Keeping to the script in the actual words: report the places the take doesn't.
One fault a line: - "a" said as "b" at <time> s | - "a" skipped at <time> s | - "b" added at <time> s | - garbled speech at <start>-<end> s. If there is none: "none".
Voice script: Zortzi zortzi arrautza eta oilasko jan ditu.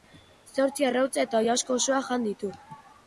- "zortzi" skipped at 0.9 s
- "osoa" added at 1.8 s